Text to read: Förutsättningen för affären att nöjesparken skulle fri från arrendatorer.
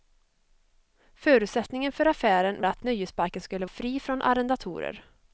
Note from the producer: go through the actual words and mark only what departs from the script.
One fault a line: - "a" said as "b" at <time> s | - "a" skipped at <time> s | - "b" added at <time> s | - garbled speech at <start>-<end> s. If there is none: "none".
none